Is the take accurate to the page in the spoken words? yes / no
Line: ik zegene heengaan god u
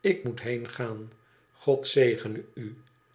no